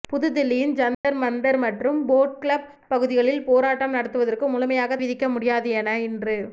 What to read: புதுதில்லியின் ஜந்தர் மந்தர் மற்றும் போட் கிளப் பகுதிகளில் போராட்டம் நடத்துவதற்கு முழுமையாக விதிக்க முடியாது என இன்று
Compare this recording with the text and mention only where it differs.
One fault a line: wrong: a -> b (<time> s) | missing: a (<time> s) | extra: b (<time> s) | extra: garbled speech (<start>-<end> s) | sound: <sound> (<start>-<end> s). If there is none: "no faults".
sound: dropout (0.9-1.0 s)